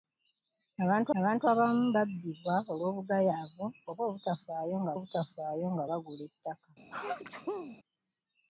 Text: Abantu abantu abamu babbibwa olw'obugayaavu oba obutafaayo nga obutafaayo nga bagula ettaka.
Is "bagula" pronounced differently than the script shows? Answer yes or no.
no